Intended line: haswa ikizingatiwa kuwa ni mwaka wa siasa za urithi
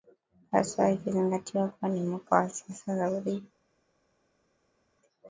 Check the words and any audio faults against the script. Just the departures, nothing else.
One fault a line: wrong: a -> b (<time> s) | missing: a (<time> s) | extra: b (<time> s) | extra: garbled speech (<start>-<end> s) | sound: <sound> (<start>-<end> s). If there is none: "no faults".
no faults